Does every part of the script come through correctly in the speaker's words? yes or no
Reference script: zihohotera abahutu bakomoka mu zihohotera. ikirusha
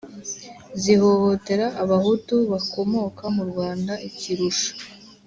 no